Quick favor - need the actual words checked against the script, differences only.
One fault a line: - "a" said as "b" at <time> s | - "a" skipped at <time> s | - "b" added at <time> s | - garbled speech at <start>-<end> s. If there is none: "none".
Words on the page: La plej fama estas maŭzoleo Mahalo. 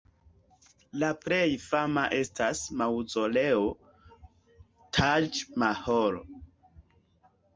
- "Taĝ" added at 5.0 s